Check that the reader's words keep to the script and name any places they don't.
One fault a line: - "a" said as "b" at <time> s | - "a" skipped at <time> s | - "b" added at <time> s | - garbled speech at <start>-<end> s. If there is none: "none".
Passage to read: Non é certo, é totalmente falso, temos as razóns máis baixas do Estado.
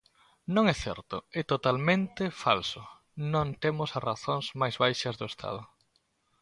- "non" added at 3.3 s